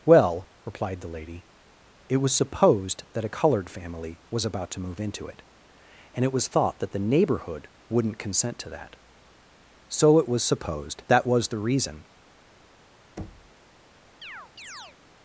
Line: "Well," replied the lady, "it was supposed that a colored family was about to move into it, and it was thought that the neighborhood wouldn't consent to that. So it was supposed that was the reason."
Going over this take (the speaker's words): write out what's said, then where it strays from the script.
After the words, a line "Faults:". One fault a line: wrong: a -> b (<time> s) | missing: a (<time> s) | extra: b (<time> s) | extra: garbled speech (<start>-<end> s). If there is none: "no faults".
"Well," replied the lady, "it was supposed that a colored family was about to move into it, and it was thought that the neighborhood wouldn't consent to that. So it was supposed that was the reason."
Faults:
no faults